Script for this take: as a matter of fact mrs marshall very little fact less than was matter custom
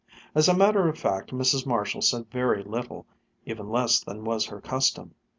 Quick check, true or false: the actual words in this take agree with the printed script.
false